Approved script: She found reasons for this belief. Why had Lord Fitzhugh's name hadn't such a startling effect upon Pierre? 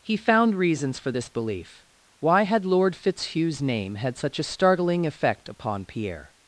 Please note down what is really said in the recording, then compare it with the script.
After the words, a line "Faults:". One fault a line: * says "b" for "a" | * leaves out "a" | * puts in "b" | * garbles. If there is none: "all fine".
He found reasons for this belief. Why had Lord Fitzhugh's name had such a startling effect upon Pierre?
Faults:
* says "He" for "She"
* says "had" for "hadn't"